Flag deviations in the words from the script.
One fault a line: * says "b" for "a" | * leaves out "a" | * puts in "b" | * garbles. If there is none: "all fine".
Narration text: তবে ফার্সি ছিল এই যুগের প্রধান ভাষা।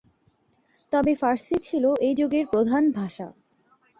all fine